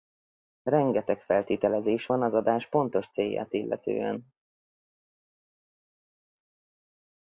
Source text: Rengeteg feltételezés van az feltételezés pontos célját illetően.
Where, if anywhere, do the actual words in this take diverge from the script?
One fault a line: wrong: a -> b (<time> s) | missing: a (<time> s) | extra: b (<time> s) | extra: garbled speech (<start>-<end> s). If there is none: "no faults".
wrong: feltételezés -> adás (2.3 s)